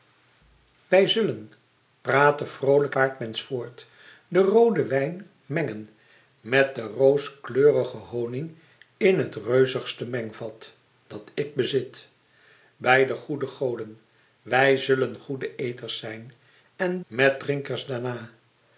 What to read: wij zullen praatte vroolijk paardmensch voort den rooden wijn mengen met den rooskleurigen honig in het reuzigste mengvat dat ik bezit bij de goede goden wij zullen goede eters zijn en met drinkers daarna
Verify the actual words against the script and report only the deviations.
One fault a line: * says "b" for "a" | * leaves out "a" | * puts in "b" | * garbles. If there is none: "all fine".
all fine